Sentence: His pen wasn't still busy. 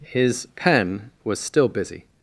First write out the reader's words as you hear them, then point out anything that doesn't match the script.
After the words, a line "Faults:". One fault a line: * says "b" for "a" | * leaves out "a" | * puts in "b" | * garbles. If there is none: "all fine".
His pen was still busy.
Faults:
* says "was" for "wasn't"